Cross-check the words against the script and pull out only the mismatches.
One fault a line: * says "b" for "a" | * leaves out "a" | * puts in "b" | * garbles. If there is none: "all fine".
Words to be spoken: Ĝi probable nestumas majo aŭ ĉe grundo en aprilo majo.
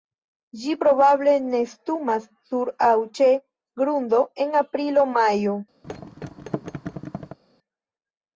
* says "sur" for "majo"